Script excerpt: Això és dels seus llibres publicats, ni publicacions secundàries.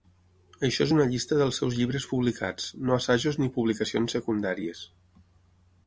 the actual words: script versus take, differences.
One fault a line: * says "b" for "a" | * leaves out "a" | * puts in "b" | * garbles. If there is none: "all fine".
* puts in "una llista"
* puts in "no assajos"